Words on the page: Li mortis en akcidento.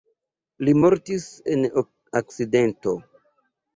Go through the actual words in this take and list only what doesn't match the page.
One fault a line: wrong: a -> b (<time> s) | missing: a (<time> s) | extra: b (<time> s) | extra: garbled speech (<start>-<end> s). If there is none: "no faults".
no faults